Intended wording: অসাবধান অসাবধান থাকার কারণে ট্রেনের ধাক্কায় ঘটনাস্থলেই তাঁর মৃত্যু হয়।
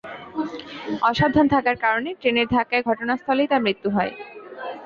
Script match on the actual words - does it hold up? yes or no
no